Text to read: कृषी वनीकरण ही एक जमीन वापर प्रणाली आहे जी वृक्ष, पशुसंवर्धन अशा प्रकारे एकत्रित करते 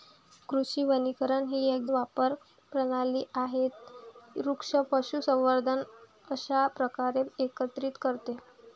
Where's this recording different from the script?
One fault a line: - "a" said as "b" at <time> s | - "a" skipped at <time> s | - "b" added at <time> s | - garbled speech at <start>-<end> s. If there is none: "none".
- "जमीन" skipped at 1.9 s
- "जी" skipped at 3.7 s